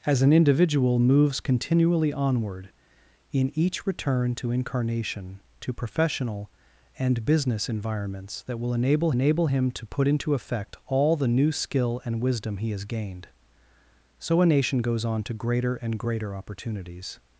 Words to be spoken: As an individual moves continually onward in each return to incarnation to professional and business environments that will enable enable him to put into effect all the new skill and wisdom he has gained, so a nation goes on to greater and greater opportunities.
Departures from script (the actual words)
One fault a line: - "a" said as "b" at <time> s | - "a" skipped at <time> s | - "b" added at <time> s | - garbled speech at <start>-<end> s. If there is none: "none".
none